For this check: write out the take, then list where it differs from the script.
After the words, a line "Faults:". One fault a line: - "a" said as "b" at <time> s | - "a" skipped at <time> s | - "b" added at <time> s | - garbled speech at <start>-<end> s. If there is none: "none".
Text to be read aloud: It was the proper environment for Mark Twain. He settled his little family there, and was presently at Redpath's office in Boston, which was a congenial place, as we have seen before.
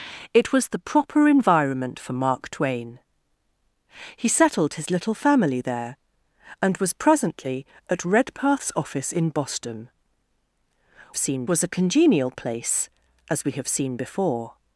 It was the proper environment for Mark Twain. He settled his little family there, and was presently at Redpath's office in Boston, seen was a congenial place, as we have seen before.
Faults:
- "which" said as "seen" at 11.2 s